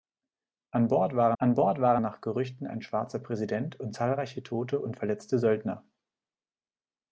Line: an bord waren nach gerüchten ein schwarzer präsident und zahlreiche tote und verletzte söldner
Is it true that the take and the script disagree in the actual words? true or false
true